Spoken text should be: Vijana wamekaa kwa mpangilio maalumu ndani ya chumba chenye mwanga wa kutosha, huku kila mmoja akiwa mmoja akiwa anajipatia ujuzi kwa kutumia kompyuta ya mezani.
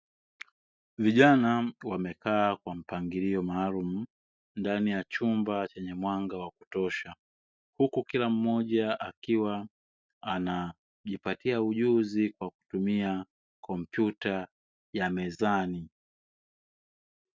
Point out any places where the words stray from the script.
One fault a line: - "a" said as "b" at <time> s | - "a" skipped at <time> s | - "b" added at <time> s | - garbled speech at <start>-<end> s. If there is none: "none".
- "mmoja akiwa" skipped at 9.7 s